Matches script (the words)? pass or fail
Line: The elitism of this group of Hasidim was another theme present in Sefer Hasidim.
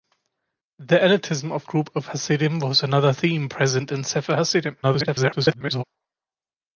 fail